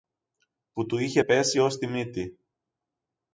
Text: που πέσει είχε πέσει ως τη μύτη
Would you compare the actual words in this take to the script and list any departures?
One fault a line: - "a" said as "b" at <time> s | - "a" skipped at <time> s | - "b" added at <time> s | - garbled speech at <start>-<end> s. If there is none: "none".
- "πέσει" said as "του" at 0.8 s